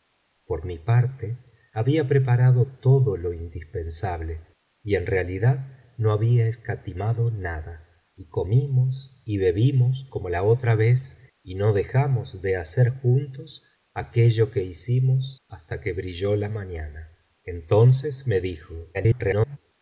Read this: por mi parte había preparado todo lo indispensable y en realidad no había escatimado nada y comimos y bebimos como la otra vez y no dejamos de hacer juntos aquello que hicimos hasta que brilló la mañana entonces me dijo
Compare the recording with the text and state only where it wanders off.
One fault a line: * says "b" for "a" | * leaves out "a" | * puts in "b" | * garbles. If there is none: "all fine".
* garbles